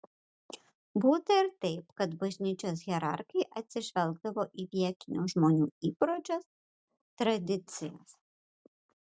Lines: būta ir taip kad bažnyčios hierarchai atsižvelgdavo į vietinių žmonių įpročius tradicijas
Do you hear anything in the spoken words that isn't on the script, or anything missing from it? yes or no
no